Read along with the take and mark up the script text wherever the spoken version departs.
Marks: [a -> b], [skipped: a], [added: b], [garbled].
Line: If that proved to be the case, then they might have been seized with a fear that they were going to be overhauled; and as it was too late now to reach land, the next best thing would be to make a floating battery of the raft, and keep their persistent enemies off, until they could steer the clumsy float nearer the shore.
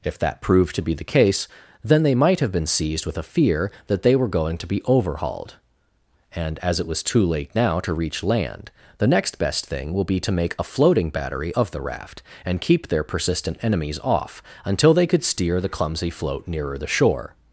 If that proved to be the case, then they might have been seized with a fear that they were going to be overhauled; and as it was too late now to reach land, the next best thing [would -> will] be to make a floating battery of the raft, and keep their persistent enemies off, until they could steer the clumsy float nearer the shore.